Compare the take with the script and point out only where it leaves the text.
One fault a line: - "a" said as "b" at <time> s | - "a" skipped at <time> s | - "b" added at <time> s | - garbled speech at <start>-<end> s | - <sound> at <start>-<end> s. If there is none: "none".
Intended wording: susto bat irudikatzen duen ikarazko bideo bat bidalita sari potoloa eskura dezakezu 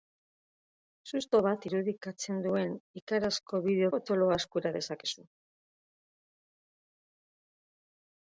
- "bat bidalita sari" skipped at 3.9 s